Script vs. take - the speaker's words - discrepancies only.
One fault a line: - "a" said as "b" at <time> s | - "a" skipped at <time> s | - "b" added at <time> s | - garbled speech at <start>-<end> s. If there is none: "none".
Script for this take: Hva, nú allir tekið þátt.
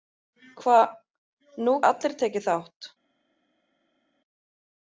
none